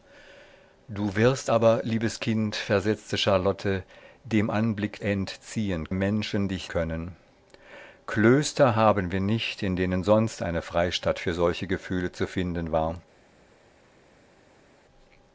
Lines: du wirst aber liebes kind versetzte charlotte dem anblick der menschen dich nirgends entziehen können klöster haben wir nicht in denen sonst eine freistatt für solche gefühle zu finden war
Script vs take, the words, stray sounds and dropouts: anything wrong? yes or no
yes